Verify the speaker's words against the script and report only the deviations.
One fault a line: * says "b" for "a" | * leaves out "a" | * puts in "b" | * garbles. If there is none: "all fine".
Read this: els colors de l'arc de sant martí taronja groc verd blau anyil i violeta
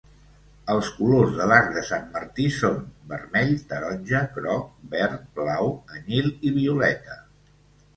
* puts in "són vermell"